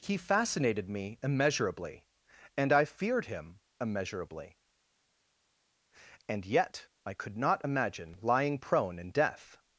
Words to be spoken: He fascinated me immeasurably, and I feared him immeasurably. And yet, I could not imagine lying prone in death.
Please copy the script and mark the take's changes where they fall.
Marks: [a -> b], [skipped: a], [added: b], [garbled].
He fascinated me immeasurably, and I feared him immeasurably. And yet, I could not imagine lying prone in death.